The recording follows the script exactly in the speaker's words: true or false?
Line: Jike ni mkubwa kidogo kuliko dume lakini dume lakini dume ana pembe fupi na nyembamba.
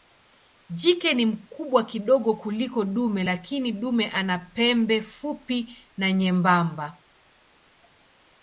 false